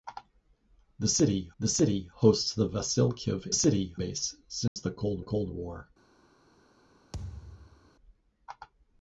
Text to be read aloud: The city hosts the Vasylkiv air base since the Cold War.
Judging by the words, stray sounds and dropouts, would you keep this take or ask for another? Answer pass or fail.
fail